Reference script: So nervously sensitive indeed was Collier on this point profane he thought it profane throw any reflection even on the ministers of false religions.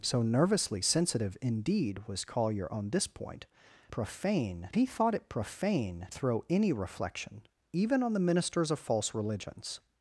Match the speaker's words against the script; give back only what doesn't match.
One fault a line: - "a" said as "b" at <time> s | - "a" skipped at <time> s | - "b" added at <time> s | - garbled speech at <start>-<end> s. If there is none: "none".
none